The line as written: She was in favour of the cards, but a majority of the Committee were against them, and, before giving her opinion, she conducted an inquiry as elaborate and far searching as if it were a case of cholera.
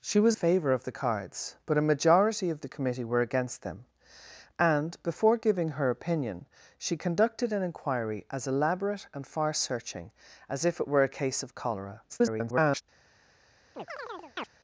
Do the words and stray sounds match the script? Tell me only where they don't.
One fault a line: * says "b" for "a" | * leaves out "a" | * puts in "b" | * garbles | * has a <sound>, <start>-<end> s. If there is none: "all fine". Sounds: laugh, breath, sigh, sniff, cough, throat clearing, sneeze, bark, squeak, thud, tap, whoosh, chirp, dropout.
* leaves out "in"
* garbles
* has a chirp, 13.7-14.5 s